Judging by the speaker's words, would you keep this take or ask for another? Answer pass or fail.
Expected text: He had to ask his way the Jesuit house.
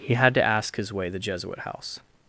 pass